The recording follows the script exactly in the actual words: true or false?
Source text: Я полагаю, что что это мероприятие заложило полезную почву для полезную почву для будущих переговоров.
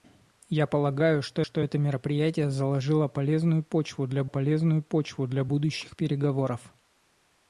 true